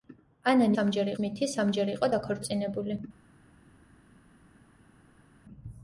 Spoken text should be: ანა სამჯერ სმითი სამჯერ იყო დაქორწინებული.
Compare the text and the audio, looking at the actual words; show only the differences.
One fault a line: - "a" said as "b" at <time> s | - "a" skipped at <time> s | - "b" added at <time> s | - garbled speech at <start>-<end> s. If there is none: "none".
none